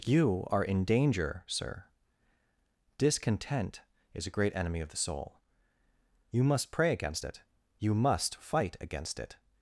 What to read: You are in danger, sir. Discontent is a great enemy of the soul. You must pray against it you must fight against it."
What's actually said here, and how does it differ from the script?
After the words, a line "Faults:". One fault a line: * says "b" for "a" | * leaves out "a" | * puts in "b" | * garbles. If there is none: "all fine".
You are in danger, sir. Discontent is a great enemy of the soul. You must pray against it you must fight against it."
Faults:
all fine